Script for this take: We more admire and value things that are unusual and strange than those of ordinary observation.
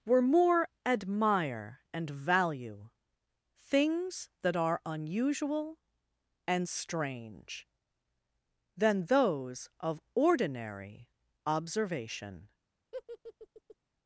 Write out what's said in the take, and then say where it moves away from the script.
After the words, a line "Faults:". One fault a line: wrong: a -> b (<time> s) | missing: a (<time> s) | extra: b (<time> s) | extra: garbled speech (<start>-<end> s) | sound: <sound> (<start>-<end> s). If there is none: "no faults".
Were more admire and value things that are unusual and strange than those of ordinary observation.
Faults:
wrong: We -> Were (0.0 s)
sound: laugh (12.9-13.8 s)